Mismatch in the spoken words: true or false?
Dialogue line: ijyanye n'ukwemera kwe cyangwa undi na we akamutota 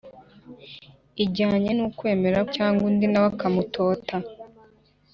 true